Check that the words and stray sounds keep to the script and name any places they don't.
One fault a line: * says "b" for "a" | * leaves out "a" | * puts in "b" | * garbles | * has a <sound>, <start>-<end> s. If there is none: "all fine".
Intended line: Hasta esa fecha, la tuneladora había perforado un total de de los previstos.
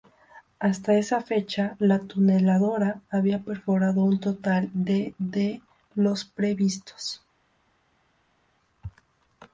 all fine